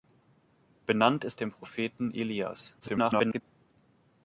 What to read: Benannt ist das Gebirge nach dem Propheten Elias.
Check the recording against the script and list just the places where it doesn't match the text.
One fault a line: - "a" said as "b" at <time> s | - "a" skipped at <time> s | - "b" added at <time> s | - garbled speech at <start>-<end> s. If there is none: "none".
- "das Gebirge nach" skipped at 1.4 s
- garbled speech at 2.8-3.4 s